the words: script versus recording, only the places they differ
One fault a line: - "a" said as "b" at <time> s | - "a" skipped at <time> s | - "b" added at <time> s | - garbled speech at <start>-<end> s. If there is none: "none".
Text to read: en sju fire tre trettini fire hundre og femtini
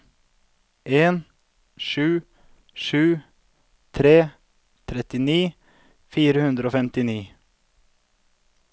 - "fire" said as "sju" at 2.7 s